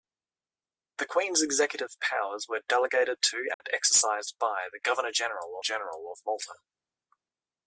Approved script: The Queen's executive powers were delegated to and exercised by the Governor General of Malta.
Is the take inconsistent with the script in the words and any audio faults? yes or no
yes